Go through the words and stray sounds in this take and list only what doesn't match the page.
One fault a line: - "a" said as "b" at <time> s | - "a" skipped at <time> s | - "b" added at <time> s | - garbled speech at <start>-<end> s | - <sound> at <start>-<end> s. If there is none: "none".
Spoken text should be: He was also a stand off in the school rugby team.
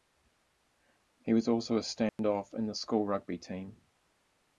- dropout at 2.1-2.2 s